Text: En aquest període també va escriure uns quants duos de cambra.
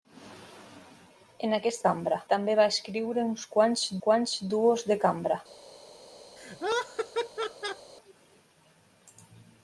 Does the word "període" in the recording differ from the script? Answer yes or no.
yes